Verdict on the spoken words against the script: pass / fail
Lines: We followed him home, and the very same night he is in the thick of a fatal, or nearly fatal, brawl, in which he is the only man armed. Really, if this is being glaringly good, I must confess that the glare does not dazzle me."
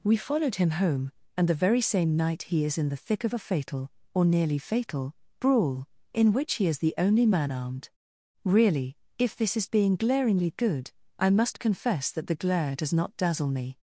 pass